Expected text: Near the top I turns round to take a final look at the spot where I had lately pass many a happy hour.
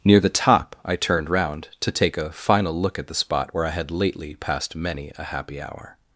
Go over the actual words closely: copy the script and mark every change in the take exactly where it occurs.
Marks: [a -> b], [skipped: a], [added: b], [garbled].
Near the top I [turns -> turned] round to take a final look at the spot where I had lately [pass -> passed] many a happy hour.